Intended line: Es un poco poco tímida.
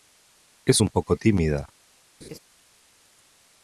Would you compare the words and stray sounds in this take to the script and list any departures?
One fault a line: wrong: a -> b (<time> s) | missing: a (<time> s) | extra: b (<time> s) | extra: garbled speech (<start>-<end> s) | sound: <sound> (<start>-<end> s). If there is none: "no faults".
missing: poco (1.2 s)
sound: laugh (2.2-2.4 s)